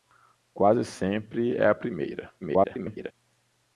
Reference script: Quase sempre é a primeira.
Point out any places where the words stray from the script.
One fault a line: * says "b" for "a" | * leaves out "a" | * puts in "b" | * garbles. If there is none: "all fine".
* garbles